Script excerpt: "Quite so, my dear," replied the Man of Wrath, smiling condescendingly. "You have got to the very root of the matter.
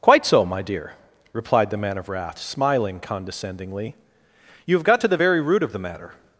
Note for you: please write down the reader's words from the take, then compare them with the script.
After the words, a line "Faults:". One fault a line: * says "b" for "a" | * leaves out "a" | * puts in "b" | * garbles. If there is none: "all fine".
"Quite so, my dear," replied the Man of Wrath, smiling condescendingly. "You have got to the very root of the matter.
Faults:
all fine